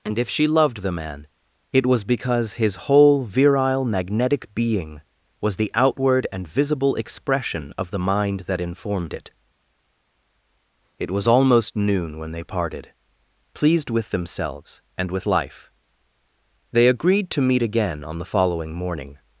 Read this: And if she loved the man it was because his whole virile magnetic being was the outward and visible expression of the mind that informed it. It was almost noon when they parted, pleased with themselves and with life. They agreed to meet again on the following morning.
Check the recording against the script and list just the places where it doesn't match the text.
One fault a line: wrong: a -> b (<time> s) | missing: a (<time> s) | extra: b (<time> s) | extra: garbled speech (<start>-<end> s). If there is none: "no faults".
no faults